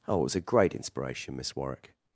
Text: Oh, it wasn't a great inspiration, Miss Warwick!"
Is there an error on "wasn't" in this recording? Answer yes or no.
yes